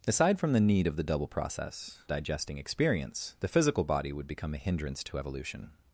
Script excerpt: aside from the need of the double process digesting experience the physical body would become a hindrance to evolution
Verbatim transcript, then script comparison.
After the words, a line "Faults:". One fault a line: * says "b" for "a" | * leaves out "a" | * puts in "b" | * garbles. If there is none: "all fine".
aside from the need of the double process digesting experience the physical body would become a hindrance to evolution
Faults:
all fine